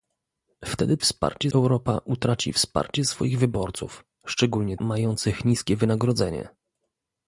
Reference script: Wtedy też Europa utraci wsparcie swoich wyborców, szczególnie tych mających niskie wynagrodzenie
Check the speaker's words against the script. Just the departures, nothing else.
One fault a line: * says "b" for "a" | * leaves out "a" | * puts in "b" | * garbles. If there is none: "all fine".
* says "wsparcie" for "też"
* leaves out "tych"